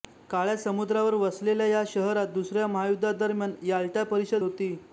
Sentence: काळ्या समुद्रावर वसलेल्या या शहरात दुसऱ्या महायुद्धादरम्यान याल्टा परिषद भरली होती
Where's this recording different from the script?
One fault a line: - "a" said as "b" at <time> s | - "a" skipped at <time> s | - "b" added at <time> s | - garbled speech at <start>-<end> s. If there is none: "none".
- "भरली" skipped at 4.4 s